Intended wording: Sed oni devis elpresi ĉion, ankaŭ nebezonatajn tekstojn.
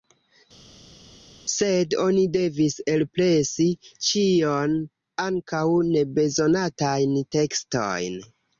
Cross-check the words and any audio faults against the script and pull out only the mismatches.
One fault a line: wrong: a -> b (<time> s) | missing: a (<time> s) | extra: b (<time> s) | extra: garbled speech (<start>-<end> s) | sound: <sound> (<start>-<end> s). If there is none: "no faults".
no faults